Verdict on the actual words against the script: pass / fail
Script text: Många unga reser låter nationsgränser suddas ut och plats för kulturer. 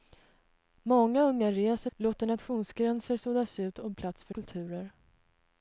pass